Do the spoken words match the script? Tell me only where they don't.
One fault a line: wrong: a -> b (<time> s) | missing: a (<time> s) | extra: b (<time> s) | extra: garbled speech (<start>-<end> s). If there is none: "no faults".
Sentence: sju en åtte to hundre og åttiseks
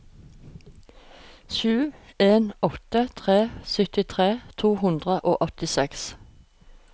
extra: tre syttitre (3.2 s)